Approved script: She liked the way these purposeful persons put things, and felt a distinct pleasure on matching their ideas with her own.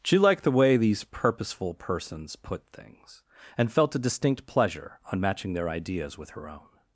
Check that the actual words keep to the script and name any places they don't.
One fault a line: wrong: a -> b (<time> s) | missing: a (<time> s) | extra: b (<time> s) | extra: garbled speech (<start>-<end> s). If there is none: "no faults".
no faults